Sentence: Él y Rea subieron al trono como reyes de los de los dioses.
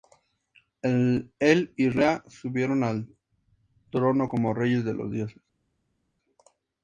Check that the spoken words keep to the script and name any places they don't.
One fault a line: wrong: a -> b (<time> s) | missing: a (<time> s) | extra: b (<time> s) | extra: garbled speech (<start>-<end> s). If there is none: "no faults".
missing: de los (5.1 s)